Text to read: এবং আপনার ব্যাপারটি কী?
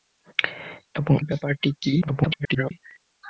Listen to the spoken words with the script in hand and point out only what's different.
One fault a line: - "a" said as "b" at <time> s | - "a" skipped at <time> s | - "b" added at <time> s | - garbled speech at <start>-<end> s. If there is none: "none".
- "আপনার" skipped at 1.1 s
- garbled speech at 2.0-2.7 s